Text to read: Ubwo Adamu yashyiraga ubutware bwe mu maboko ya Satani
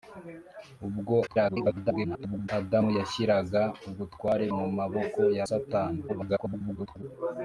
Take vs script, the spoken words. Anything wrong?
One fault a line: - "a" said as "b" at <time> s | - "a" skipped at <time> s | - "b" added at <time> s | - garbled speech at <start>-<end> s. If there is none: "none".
- garbled speech at 1.3-2.5 s
- "bwe" skipped at 4.4 s
- garbled speech at 6.1-7.0 s